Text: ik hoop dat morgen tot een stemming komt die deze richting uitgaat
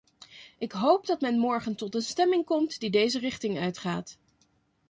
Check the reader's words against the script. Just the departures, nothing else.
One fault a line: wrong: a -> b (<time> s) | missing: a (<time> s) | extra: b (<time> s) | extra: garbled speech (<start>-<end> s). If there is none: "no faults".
extra: men (1.2 s)